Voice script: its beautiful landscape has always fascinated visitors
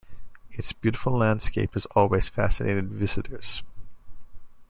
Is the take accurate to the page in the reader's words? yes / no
yes